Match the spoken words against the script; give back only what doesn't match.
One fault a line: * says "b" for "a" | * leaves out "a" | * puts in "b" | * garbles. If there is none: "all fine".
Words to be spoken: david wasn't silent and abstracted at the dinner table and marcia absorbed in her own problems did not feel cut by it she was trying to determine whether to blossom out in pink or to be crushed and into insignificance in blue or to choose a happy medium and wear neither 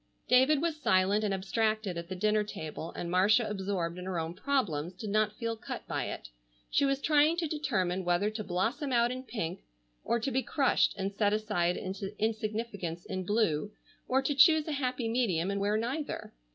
* says "was" for "wasn't"
* puts in "set aside"